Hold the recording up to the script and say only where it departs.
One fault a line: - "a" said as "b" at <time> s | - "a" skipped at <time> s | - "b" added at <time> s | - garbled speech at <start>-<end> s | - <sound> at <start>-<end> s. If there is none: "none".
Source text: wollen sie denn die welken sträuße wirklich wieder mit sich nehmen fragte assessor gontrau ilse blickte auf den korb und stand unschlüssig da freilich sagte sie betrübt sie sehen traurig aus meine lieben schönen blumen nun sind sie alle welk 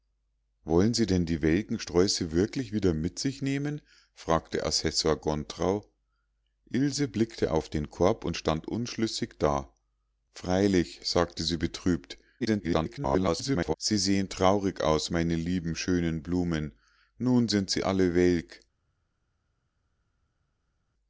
- garbled speech at 12.4-13.7 s